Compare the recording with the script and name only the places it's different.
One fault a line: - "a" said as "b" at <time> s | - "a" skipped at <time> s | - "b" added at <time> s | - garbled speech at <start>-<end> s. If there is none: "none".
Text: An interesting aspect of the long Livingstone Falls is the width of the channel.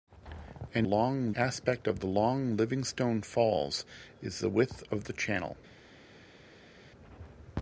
- "interesting" said as "long" at 0.8 s